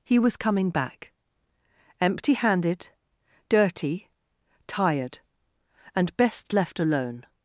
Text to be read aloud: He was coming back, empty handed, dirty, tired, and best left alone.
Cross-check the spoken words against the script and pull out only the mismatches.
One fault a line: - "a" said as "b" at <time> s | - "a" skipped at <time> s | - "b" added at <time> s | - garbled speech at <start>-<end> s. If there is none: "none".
none